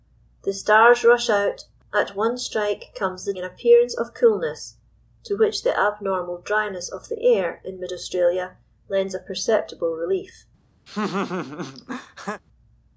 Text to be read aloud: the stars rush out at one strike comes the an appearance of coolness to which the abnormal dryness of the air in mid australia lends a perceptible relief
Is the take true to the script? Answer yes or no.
yes